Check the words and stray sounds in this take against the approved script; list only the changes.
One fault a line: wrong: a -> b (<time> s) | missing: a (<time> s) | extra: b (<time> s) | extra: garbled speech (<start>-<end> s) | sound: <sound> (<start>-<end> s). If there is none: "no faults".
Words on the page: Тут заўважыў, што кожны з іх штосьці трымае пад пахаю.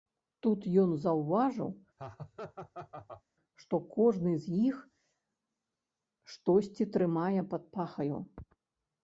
extra: ён (0.8 s)
sound: laugh (2.0-3.2 s)